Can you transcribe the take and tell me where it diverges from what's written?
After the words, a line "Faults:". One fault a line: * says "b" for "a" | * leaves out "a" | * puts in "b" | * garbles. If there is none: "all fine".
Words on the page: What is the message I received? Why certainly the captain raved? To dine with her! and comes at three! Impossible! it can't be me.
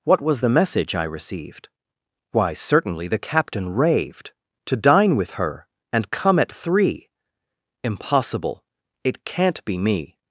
What was the message I received? Why certainly the captain raved? To dine with her! and come at three! Impossible! it can't be me.
Faults:
* says "was" for "is"
* says "come" for "comes"